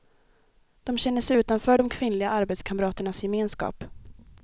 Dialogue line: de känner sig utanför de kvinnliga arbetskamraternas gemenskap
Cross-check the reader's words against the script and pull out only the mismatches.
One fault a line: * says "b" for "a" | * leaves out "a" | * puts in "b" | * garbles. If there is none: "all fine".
all fine